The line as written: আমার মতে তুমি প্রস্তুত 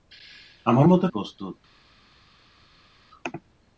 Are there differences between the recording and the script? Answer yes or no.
yes